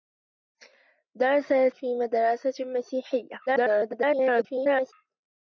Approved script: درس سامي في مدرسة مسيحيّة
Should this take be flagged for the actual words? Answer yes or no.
yes